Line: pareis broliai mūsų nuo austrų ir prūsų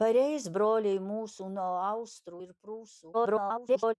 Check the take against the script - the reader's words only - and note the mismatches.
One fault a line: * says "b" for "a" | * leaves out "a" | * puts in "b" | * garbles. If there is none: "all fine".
* garbles